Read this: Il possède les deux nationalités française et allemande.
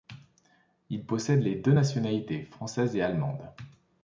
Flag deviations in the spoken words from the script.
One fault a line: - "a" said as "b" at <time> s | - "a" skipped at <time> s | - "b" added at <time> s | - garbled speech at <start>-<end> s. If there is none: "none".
none